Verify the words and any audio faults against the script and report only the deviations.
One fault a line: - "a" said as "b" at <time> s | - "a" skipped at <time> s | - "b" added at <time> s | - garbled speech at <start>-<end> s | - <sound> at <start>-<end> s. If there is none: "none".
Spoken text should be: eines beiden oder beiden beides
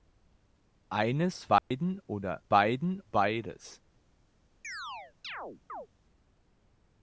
- dropout at 1.6-1.7 s
- chirp at 4.6-5.9 s